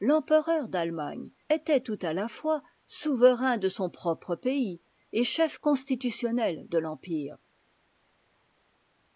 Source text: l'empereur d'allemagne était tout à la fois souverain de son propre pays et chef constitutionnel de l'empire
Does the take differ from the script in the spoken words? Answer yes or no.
no